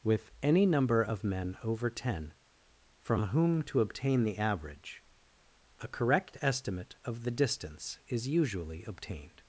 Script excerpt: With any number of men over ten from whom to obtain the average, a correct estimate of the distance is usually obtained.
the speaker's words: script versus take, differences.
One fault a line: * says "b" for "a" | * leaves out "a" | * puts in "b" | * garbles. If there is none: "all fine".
all fine